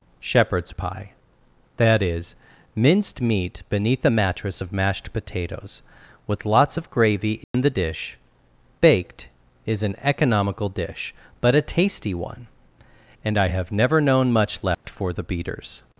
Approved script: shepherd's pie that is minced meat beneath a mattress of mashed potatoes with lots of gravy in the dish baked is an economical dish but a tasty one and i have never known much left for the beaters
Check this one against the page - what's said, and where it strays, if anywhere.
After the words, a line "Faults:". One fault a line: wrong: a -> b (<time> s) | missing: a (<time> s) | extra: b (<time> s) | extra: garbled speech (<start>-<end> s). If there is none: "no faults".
shepherd's pie that is minced meat beneath a mattress of mashed potatoes with lots of gravy in the dish baked is an economical dish but a tasty one and i have never known much left for the beaters
Faults:
no faults